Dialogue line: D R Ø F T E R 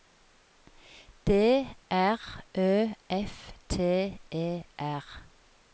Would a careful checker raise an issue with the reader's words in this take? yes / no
no